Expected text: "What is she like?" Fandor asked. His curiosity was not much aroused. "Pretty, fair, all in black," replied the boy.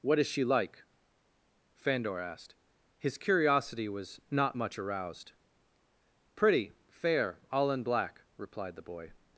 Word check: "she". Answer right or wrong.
right